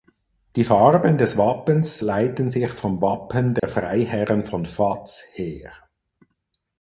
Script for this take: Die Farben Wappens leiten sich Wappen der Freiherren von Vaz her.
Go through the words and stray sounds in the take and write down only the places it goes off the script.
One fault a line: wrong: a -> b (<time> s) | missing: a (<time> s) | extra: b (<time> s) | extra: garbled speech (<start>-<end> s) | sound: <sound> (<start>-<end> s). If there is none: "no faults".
extra: des (1.2 s)
extra: vom (2.7 s)
sound: dropout (3.6-3.6 s)